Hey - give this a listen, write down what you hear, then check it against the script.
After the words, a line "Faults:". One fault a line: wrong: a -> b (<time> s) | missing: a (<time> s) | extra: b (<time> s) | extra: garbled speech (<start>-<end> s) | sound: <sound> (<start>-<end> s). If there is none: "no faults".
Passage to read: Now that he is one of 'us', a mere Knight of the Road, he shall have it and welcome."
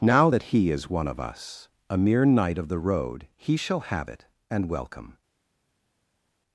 Now that he is one of 'us', a mere Knight of the Road, he shall have it and welcome."
Faults:
no faults